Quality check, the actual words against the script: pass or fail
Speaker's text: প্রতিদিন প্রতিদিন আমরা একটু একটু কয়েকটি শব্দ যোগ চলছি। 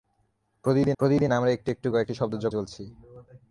pass